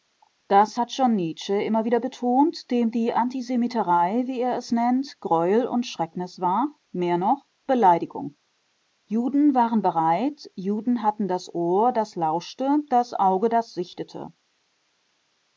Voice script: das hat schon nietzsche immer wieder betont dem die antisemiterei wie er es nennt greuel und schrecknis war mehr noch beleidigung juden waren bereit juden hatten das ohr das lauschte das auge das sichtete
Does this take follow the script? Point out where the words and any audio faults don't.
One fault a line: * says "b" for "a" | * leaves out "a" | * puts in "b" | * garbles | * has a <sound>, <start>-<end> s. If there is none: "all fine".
all fine